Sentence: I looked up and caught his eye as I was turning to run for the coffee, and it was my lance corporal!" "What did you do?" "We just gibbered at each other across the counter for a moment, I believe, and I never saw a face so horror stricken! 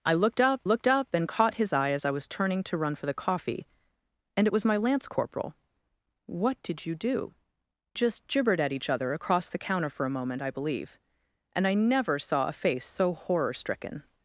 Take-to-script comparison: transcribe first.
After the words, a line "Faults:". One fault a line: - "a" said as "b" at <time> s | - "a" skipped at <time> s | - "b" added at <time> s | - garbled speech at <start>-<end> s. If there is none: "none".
I looked up looked up and caught his eye as I was turning to run for the coffee, and it was my lance corporal!" "What did you do?" "Just gibbered at each other across the counter for a moment, I believe, and I never saw a face so horror stricken!
Faults:
- "looked up" added at 0.6 s
- "We" skipped at 7.3 s